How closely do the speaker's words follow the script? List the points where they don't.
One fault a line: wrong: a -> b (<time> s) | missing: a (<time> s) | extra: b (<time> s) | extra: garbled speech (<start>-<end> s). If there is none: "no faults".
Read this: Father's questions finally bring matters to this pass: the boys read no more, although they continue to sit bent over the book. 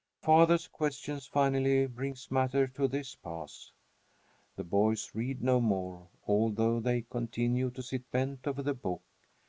no faults